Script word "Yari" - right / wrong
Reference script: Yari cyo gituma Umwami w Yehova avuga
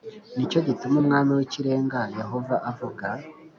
wrong